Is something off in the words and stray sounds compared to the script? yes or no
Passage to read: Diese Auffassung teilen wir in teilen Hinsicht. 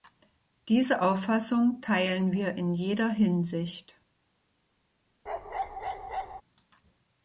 yes